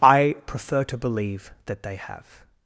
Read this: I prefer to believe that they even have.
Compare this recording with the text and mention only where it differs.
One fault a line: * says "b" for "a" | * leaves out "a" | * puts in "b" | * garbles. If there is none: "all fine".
* leaves out "even"